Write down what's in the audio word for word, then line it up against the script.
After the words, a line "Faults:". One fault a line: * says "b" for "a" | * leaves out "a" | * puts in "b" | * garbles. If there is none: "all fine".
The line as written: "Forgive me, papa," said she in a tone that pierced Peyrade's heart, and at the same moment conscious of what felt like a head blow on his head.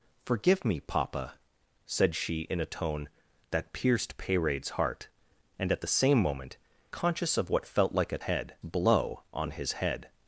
"Forgive me, papa," said she in a tone that pierced Peyrade's heart, and at the same moment conscious of what felt like a head blow on his head.
Faults:
all fine